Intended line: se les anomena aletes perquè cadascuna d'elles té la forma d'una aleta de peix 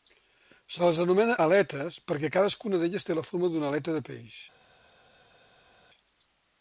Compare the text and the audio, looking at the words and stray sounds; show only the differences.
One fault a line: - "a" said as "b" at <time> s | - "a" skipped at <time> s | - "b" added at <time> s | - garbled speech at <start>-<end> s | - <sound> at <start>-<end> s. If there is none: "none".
none